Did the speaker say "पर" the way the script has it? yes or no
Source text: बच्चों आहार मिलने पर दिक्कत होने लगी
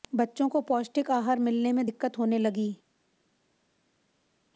no